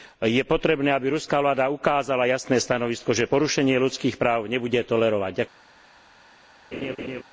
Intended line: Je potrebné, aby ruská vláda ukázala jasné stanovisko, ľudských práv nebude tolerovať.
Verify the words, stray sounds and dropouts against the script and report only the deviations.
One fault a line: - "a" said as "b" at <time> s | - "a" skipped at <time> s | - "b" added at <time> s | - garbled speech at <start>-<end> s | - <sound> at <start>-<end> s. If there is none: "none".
- "že porušenie" added at 3.1 s
- laugh at 6.7-7.2 s